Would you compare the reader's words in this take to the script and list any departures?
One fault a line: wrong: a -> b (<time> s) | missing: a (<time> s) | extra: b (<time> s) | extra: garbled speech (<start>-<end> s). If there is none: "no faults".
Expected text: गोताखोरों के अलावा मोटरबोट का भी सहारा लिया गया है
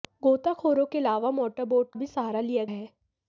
missing: का (1.9 s)
missing: गया (2.6 s)